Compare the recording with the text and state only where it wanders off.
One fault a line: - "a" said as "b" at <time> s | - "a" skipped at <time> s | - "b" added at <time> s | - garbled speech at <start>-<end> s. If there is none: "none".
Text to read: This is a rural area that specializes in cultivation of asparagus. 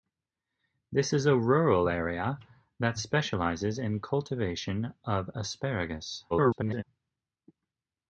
- garbled speech at 6.3-6.8 s